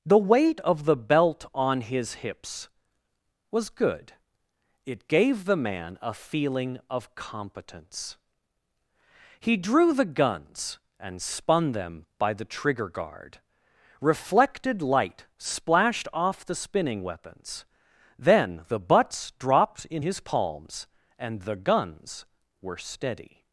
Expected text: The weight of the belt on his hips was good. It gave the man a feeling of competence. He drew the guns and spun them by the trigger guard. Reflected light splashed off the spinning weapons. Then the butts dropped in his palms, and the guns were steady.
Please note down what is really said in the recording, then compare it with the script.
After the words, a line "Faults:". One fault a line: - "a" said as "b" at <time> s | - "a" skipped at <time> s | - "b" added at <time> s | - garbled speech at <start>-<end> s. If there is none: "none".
The weight of the belt on his hips was good. It gave the man a feeling of competence. He drew the guns and spun them by the trigger guard. Reflected light splashed off the spinning weapons. Then the butts dropped in his palms, and the guns were steady.
Faults:
none